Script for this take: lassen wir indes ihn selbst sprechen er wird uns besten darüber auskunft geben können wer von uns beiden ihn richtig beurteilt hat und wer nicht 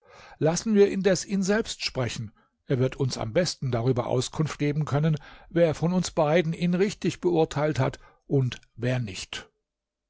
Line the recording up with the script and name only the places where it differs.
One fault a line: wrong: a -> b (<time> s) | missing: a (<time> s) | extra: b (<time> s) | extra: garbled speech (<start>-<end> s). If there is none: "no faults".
extra: am (3.2 s)